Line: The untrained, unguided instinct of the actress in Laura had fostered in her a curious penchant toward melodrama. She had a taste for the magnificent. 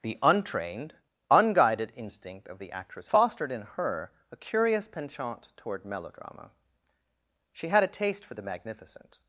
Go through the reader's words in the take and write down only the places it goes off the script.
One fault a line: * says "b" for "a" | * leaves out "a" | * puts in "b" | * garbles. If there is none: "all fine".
* leaves out "in Laura had"